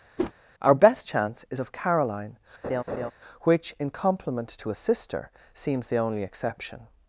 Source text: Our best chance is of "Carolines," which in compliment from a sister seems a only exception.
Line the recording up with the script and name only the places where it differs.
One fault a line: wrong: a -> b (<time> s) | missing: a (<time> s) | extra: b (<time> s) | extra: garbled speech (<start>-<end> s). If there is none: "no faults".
wrong: Carolines -> Caroline (1.7 s)
wrong: from -> to (4.5 s)
wrong: a -> the (5.9 s)